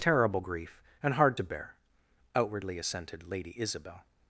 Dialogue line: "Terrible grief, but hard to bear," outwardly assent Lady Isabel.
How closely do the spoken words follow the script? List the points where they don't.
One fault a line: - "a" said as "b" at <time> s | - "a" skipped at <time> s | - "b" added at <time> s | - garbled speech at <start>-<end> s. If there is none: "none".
- "but" said as "and" at 1.0 s
- "assent" said as "assented" at 2.8 s